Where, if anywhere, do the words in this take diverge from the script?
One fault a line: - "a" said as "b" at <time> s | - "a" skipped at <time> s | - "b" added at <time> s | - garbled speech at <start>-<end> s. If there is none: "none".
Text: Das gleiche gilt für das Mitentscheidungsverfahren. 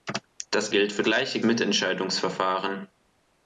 - "gleiche" skipped at 0.7 s
- "das" said as "gleiche" at 1.0 s